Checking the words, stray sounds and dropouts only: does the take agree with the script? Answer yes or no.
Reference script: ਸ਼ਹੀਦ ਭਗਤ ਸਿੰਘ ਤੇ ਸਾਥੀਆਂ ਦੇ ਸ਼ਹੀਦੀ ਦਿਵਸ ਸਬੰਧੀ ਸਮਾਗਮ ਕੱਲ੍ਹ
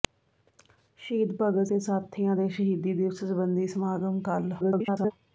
no